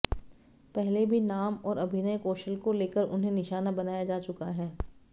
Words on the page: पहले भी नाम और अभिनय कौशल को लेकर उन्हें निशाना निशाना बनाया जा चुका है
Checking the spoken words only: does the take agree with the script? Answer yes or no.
no